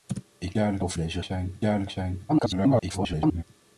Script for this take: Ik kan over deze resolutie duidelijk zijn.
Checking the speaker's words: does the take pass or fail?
fail